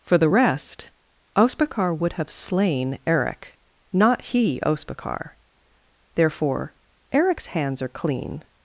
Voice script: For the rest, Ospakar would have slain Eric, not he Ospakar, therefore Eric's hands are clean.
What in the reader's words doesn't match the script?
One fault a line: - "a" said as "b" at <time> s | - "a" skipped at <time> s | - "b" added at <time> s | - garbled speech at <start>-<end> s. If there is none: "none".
none